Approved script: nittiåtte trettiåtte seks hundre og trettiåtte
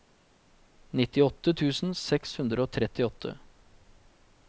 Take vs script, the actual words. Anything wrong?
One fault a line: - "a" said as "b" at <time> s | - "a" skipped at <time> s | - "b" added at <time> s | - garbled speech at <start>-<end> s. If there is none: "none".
- "trettiåtte" said as "tusen" at 1.6 s